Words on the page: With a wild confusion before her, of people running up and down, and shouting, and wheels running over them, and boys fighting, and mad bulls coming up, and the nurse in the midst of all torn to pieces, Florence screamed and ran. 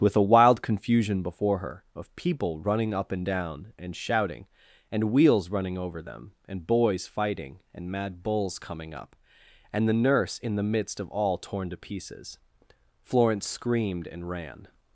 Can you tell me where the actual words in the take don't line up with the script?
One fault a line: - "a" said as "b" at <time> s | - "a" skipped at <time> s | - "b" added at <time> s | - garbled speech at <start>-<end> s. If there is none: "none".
none